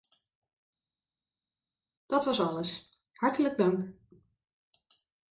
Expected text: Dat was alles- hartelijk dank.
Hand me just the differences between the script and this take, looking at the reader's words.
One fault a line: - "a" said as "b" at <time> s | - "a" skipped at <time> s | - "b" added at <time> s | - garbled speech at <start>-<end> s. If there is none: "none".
none